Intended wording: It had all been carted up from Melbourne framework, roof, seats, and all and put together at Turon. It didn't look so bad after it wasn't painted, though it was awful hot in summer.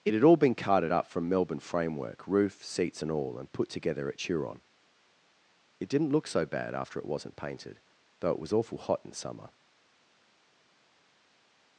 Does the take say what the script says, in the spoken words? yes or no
yes